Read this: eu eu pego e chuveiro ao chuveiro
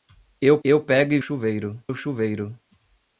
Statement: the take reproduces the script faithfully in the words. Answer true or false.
true